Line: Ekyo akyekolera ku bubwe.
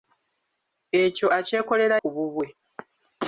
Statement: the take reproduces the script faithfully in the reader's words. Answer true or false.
true